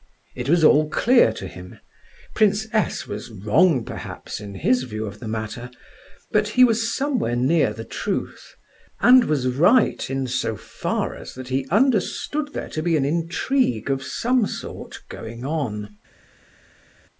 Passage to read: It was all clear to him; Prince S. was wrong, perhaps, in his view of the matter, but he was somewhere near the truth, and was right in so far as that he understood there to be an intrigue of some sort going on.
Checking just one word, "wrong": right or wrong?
right